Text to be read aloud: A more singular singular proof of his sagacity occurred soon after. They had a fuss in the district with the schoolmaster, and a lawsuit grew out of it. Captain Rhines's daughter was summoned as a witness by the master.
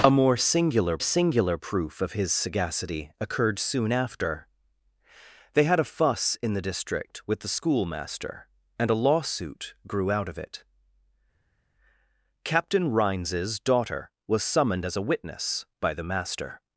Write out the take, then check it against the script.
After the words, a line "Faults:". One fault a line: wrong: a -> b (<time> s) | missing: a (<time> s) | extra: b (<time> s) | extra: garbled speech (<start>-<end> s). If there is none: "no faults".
A more singular singular proof of his sagacity occurred soon after. They had a fuss in the district with the schoolmaster, and a lawsuit grew out of it. Captain Rhines's daughter was summoned as a witness by the master.
Faults:
no faults